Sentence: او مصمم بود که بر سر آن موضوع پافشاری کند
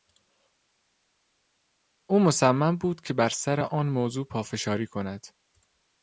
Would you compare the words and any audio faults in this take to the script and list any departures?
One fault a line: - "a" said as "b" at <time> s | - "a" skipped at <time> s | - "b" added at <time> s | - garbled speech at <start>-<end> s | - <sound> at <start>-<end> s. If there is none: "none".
none